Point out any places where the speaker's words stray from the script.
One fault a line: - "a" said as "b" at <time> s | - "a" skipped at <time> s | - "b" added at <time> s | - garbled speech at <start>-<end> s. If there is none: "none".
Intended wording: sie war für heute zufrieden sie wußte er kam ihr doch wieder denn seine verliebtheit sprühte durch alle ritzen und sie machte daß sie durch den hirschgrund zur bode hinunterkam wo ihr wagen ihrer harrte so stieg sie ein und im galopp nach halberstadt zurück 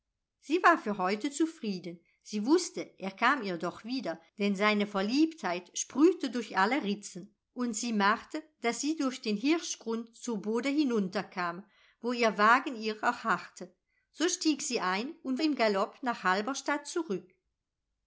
none